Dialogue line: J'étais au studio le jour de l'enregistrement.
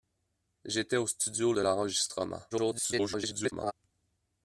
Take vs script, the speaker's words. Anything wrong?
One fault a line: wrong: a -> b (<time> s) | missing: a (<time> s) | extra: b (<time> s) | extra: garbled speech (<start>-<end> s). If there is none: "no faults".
missing: le jour (1.5 s)
extra: garbled speech (2.5-3.7 s)